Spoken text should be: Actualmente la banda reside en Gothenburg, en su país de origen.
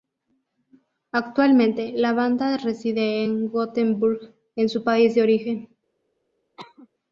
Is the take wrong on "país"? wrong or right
right